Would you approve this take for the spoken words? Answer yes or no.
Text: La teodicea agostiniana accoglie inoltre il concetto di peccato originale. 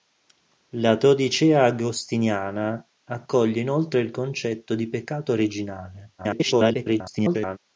no